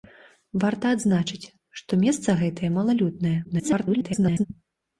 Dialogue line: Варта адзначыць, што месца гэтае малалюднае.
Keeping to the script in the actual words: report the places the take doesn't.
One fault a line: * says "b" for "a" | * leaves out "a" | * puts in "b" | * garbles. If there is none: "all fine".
* garbles